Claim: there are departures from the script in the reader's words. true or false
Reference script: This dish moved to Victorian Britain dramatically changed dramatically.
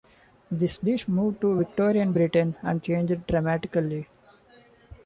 true